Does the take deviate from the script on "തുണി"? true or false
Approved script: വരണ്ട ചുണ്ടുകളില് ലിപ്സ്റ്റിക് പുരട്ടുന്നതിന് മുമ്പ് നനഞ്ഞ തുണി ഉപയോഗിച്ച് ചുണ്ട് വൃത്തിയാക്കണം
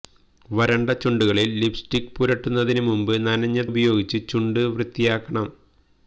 true